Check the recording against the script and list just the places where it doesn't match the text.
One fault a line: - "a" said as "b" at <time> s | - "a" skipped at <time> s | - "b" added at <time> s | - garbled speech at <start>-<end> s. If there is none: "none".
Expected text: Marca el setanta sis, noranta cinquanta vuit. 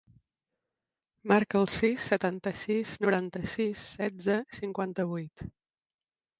- "sis" added at 1.7 s
- "sis setze" added at 3.5 s